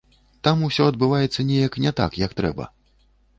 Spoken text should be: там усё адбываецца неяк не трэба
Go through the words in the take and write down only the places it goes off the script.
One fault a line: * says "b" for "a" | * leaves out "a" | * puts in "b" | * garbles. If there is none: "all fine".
* puts in "так як"